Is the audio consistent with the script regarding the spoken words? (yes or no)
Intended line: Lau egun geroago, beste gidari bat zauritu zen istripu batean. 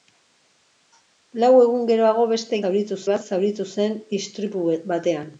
no